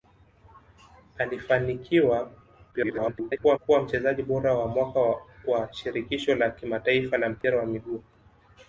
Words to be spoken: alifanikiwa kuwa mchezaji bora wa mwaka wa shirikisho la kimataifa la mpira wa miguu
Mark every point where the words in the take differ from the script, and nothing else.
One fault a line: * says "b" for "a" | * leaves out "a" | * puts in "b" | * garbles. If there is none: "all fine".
* garbles